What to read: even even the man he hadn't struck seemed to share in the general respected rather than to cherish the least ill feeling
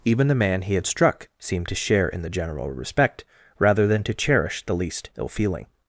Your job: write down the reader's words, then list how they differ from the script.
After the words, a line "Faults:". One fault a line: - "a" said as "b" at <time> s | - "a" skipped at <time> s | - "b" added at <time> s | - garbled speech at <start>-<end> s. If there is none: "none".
even the man he had struck seemed to share in the general respect rather than to cherish the least ill feeling
Faults:
- "even" skipped at 0.3 s
- "hadn't" said as "had" at 0.7 s
- "respected" said as "respect" at 2.7 s